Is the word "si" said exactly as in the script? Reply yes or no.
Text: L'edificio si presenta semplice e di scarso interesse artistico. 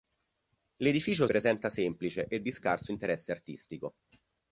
no